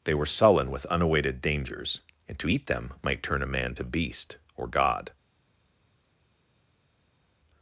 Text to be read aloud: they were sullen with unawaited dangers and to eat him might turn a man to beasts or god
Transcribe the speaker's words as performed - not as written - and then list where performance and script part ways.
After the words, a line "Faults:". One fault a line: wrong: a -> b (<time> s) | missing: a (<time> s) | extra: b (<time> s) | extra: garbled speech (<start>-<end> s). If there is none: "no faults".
they were sullen with unawaited dangers and to eat them might turn a man to beast or god
Faults:
wrong: him -> them (2.7 s)
wrong: beasts -> beast (3.8 s)